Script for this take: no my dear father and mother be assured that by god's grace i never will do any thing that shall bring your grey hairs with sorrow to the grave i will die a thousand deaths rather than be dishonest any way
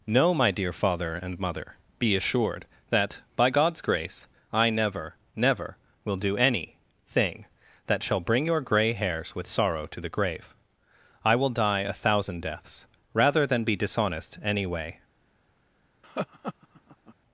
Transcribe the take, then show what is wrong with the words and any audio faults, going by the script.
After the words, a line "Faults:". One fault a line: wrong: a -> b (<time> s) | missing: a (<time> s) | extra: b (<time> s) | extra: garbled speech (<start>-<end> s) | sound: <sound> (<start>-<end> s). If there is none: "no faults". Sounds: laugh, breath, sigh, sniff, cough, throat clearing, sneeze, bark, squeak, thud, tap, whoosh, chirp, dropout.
no my dear father and mother be assured that by god's grace i never never will do any thing that shall bring your grey hairs with sorrow to the grave i will die a thousand deaths rather than be dishonest any way
Faults:
extra: never (5.3 s)
sound: laugh (16.0-17.1 s)